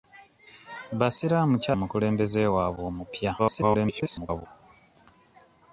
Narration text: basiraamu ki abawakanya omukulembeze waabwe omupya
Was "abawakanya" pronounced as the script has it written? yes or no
no